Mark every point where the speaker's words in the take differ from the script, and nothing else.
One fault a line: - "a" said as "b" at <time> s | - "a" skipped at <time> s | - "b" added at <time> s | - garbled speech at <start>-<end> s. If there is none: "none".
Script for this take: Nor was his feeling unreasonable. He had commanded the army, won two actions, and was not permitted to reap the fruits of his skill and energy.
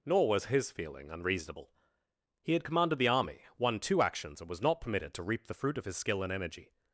- "fruits" said as "fruit" at 5.5 s